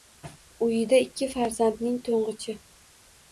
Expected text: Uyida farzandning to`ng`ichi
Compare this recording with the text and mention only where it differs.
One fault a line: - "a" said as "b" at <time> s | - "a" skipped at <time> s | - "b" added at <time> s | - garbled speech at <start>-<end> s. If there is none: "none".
- "ikki" added at 1.1 s